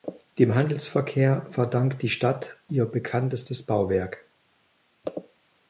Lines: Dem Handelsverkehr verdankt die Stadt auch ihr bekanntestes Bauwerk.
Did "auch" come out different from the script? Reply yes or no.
yes